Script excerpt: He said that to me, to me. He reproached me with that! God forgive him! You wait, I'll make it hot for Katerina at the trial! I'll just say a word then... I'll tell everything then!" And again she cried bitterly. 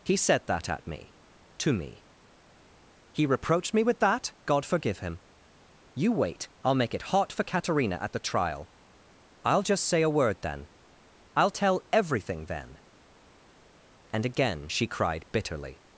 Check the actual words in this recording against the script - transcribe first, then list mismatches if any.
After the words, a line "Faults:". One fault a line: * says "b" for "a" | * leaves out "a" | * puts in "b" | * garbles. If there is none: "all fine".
He said that at me, to me. He reproached me with that! God forgive him! You wait, I'll make it hot for Katerina at the trial! I'll just say a word then... I'll tell everything then!" And again she cried bitterly.
Faults:
* says "at" for "to"